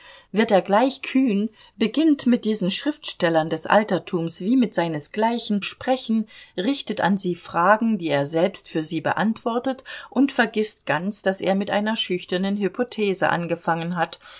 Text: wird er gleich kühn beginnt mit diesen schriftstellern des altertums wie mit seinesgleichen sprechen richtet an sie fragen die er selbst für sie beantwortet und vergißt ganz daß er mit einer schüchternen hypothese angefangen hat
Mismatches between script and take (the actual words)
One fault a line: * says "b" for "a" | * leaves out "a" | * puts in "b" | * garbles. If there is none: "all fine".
all fine